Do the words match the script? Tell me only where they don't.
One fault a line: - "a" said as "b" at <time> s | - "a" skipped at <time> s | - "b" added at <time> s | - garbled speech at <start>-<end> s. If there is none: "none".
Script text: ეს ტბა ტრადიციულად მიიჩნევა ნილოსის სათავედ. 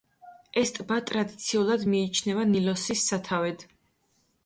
none